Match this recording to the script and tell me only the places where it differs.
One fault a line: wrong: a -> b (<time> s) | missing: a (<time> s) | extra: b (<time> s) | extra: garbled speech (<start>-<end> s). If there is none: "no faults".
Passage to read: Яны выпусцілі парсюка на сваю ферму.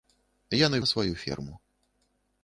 missing: выпусцілі парсюка (0.8 s)